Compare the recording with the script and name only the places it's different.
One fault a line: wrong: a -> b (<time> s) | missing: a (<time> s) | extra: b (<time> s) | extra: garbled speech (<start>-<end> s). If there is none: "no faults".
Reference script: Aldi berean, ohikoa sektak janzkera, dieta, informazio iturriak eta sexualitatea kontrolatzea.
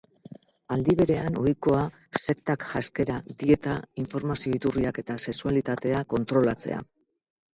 no faults